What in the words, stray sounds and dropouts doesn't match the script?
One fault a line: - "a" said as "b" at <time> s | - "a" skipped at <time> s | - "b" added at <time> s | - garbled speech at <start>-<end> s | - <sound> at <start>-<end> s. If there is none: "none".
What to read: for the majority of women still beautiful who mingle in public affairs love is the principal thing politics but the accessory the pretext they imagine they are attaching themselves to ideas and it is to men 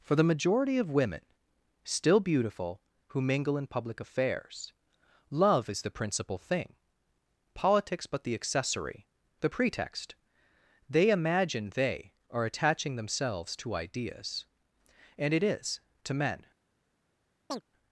- chirp at 17.5-17.6 s